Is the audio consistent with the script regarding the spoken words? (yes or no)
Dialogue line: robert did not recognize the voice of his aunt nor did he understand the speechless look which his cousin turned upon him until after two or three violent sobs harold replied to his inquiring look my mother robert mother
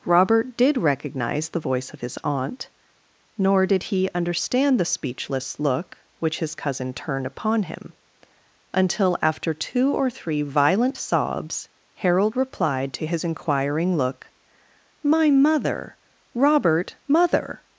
no